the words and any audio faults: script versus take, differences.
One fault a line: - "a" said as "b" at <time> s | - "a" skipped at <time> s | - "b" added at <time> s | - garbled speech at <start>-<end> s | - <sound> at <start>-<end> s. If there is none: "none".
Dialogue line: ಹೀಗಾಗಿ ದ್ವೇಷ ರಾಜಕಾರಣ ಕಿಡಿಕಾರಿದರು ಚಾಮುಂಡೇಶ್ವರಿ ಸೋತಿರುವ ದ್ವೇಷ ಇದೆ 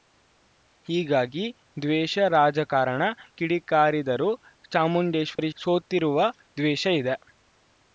- dropout at 5.4-5.4 s